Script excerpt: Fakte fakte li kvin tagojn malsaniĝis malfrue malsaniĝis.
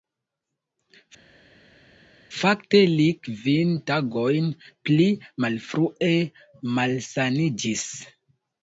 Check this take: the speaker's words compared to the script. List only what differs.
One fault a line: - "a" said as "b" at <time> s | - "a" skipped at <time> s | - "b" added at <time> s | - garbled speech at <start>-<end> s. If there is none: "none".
- "fakte" skipped at 2.8 s
- "malsaniĝis" said as "pli" at 4.9 s